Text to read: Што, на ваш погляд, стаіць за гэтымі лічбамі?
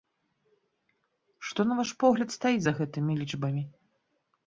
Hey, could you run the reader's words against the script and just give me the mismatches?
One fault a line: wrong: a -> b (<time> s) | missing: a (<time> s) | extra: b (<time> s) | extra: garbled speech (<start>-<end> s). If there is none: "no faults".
no faults